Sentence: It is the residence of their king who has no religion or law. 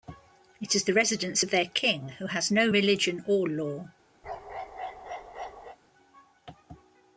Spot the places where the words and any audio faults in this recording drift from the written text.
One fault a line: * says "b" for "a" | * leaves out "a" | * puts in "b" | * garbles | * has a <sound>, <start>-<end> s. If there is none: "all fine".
* has a bark, 4.2-5.8 s